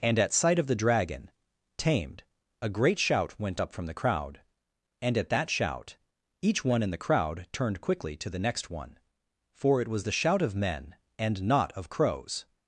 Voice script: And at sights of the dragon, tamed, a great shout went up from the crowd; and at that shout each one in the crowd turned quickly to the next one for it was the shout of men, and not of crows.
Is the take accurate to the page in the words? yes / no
no